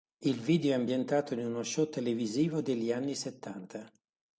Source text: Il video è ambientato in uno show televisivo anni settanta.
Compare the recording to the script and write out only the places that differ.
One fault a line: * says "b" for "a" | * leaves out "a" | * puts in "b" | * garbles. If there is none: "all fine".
* puts in "degli"